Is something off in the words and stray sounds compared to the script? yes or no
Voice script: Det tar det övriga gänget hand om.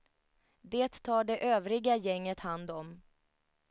no